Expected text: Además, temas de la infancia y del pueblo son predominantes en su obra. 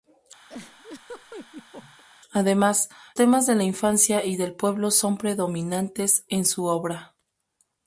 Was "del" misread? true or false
false